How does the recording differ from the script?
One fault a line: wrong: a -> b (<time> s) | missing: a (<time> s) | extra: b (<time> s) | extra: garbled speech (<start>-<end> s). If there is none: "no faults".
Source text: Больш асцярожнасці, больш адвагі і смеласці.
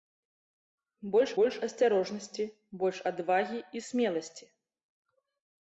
extra: больш (1.4 s)